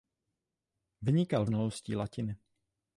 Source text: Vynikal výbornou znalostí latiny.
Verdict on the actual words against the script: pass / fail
fail